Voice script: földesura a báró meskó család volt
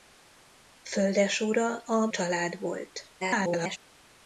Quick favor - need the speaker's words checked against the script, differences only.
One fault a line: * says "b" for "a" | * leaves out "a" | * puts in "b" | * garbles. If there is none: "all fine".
* leaves out "báró meskó"
* garbles